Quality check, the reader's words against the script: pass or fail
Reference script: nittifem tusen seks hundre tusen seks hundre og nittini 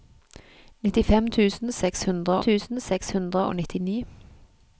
pass